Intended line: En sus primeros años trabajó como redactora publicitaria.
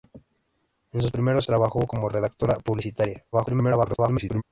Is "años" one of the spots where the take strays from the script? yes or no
yes